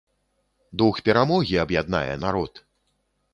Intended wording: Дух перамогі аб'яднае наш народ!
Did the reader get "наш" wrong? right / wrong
wrong